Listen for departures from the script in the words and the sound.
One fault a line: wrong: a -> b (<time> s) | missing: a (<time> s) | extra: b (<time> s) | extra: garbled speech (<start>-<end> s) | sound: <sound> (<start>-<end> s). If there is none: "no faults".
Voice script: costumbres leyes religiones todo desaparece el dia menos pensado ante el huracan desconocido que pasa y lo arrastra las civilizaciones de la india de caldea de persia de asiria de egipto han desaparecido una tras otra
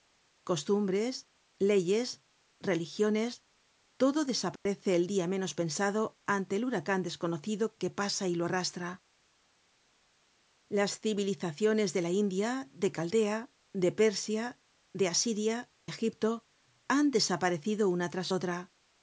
sound: dropout (4.6-4.7 s)
missing: de (15.7 s)